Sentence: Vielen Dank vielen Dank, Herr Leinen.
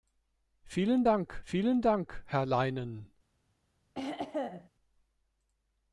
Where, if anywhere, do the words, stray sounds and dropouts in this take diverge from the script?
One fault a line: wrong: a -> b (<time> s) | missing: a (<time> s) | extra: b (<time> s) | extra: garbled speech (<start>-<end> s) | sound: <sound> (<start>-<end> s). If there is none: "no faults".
sound: throat clearing (3.9-4.7 s)